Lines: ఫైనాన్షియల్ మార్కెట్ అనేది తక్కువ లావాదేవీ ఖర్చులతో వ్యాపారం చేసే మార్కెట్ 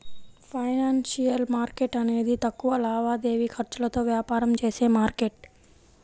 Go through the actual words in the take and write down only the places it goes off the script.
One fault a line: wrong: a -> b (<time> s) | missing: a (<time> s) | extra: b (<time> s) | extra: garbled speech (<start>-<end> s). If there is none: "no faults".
no faults